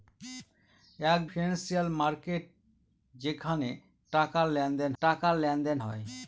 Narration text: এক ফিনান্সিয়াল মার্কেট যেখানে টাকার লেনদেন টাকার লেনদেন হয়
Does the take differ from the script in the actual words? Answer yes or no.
no